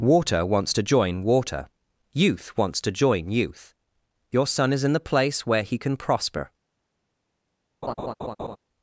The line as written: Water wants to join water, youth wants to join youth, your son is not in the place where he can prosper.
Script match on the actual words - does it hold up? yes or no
no